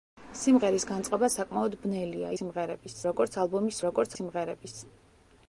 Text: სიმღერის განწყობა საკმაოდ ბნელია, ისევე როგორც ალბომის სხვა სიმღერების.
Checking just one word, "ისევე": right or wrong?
wrong